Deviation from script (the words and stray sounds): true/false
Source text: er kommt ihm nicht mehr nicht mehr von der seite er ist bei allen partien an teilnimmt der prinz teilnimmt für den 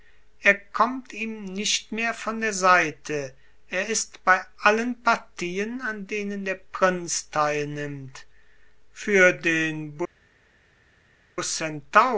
true